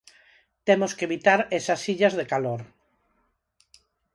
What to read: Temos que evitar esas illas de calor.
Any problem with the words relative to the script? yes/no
no